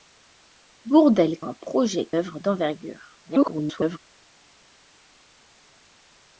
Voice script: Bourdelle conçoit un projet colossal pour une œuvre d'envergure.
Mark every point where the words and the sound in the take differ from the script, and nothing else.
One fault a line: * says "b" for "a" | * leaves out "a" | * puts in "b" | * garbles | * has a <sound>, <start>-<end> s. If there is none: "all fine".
* leaves out "conçoit"
* leaves out "colossal pour une"
* garbles